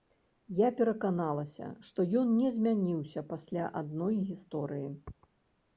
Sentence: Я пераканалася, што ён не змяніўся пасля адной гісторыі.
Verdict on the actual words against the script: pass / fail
pass